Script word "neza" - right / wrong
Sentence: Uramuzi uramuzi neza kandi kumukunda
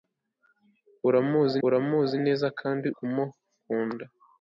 right